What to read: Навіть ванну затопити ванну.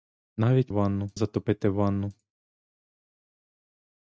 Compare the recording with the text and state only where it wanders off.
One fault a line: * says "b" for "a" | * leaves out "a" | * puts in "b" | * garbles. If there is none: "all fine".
all fine